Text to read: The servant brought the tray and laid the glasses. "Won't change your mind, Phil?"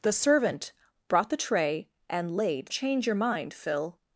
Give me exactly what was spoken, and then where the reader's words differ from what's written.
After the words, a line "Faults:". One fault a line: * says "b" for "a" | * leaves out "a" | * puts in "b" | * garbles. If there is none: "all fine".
The servant brought the tray and laid change your mind, Phil?"
Faults:
* leaves out "the glasses Won't"